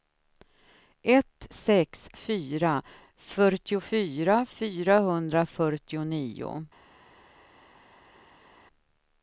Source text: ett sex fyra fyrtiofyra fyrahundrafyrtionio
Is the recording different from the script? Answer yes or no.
no